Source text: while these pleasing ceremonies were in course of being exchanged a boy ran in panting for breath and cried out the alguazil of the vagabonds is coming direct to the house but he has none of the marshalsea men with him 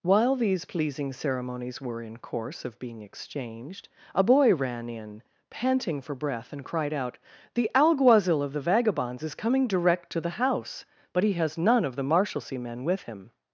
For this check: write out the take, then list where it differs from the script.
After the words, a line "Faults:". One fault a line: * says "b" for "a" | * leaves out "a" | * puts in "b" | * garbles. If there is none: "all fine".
while these pleasing ceremonies were in course of being exchanged a boy ran in panting for breath and cried out the alguazil of the vagabonds is coming direct to the house but he has none of the marshalsea men with him
Faults:
all fine